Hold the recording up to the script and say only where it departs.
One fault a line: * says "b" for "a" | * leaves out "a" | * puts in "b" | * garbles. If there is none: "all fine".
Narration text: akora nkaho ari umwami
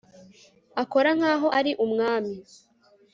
all fine